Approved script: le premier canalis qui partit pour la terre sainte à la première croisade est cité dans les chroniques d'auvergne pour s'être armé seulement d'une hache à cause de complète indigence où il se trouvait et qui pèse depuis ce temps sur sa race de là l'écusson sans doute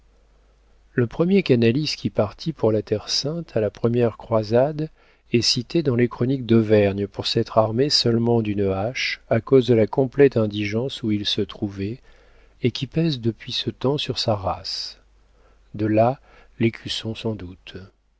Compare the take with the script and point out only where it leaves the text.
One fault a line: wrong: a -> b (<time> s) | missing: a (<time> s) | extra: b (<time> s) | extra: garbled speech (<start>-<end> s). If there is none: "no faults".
extra: la (9.7 s)